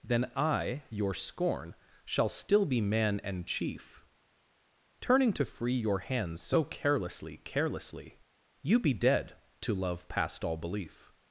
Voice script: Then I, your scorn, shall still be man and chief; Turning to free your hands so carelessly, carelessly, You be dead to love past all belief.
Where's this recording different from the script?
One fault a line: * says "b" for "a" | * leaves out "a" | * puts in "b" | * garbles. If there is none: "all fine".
all fine